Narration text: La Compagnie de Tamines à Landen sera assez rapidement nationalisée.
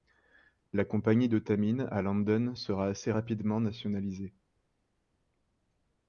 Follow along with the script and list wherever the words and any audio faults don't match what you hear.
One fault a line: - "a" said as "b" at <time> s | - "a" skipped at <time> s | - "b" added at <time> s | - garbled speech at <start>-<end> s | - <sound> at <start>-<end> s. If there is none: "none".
none